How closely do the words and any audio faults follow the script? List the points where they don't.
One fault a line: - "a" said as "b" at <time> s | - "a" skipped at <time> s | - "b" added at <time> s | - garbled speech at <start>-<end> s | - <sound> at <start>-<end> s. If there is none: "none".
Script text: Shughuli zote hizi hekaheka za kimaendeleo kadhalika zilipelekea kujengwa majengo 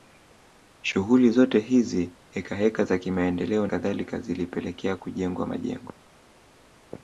none